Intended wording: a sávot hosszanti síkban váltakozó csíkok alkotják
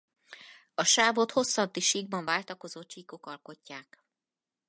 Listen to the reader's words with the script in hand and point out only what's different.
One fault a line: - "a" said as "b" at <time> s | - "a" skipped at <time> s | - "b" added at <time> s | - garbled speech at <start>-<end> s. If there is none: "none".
none